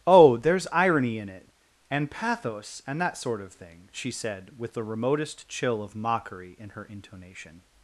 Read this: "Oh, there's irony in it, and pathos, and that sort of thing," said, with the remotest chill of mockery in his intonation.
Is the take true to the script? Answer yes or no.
no